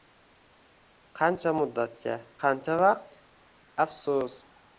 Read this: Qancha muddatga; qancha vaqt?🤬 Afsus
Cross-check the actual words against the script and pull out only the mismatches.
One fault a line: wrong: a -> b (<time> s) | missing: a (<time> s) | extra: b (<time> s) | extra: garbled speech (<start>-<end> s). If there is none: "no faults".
no faults